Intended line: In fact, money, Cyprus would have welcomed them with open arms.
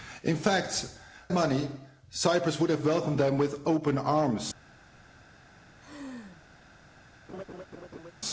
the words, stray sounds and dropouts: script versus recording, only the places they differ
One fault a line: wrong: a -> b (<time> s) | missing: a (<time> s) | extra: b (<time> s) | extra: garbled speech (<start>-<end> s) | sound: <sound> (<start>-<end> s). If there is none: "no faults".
sound: laugh (5.8-6.4 s)
sound: laugh (7.3-8.1 s)